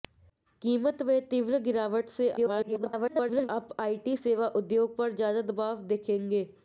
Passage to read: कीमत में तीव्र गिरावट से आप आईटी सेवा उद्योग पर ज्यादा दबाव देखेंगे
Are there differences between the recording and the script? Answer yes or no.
yes